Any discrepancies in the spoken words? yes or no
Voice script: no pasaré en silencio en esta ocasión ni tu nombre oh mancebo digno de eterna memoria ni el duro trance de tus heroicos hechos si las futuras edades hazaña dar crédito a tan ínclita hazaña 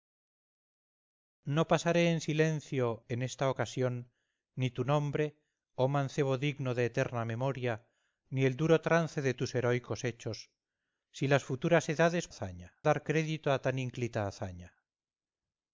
no